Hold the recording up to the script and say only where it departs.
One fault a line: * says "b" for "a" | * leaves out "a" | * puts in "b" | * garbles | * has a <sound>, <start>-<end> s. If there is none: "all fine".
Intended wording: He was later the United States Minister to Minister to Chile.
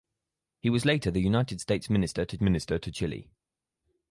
all fine